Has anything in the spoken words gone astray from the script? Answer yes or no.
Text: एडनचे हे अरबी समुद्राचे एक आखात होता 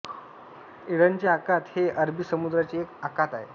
yes